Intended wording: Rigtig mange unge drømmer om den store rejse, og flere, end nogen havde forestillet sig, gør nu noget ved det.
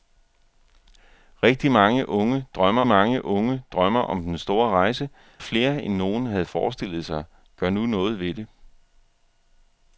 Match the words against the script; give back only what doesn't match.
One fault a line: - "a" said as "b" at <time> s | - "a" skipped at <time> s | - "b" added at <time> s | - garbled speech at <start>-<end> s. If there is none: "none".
- "mange unge drømmer" added at 2.9 s
- "og" skipped at 5.1 s